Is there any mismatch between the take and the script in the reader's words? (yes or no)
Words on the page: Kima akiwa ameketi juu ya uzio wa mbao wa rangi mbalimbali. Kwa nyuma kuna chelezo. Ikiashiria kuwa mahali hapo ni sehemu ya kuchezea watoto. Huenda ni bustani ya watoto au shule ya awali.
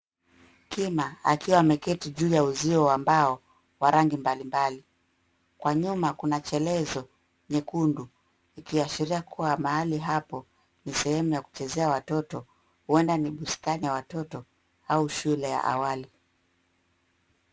yes